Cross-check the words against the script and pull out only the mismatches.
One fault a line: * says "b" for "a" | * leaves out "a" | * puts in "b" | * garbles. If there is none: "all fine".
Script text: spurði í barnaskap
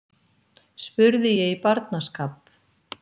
* puts in "ég"